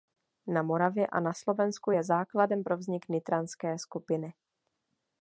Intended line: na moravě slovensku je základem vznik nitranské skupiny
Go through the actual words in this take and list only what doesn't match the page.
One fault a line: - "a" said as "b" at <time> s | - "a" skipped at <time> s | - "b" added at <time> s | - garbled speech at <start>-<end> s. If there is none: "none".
- "a na" added at 1.1 s
- "pro" added at 2.6 s